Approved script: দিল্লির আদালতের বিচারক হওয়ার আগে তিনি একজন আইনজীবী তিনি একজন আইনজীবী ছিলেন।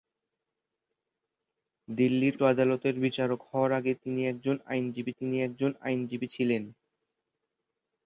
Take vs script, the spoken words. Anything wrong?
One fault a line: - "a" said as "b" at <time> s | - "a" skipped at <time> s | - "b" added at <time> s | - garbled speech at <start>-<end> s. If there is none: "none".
none